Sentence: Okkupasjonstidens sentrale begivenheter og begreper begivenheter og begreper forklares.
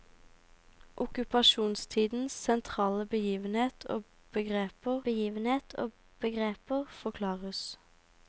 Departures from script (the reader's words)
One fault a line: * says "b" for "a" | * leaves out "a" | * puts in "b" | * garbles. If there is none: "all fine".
all fine